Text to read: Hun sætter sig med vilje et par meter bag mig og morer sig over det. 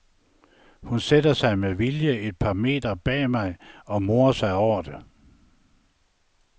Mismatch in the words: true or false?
false